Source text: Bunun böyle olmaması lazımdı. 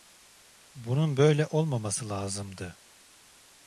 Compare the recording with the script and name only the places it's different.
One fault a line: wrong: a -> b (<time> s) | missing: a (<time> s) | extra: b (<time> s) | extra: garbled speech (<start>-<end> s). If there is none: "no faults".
no faults